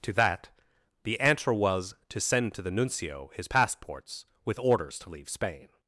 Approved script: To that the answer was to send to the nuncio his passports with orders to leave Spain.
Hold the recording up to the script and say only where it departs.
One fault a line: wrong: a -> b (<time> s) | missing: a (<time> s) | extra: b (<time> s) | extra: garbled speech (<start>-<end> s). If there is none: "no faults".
no faults